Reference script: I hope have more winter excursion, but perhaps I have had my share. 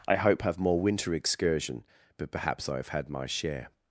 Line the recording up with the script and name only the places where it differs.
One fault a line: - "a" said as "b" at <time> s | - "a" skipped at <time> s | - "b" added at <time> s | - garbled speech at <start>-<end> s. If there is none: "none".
none